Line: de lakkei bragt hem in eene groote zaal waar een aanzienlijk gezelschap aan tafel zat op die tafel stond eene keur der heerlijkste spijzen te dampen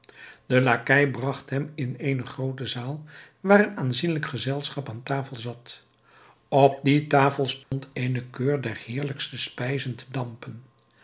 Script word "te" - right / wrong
right